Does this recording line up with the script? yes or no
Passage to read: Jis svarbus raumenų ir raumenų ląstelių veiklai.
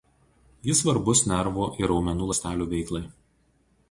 no